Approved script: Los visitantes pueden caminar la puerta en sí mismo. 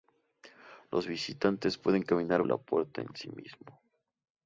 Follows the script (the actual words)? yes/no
yes